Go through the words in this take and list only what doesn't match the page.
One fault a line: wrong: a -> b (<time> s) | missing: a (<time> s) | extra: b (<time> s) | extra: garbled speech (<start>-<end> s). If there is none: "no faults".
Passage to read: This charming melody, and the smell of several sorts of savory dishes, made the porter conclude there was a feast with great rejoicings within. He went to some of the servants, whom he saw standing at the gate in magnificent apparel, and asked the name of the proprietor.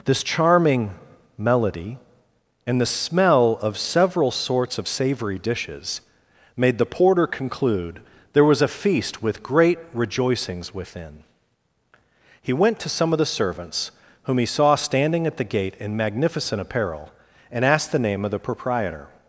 no faults